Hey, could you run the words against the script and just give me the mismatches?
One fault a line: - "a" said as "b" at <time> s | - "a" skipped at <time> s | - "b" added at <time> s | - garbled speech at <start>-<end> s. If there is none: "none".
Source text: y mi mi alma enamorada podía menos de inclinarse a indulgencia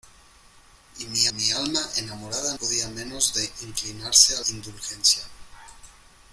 none